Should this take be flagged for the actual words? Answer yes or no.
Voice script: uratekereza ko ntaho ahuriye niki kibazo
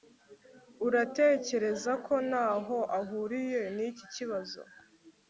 no